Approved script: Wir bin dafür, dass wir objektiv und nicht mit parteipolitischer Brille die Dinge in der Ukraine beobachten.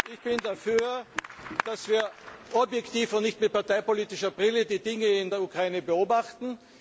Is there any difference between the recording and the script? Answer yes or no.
yes